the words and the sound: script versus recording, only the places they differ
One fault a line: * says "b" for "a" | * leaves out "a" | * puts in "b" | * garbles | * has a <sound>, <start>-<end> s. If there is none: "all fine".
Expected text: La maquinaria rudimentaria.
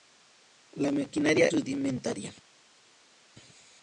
all fine